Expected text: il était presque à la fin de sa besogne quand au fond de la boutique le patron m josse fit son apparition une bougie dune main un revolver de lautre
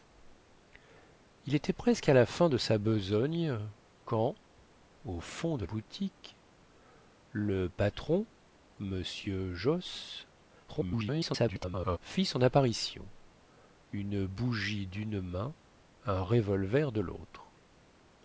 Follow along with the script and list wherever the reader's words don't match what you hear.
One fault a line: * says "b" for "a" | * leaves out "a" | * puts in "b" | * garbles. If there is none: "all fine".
* leaves out "la"
* garbles